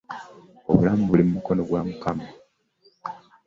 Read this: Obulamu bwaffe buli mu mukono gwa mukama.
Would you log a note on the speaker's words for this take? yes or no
yes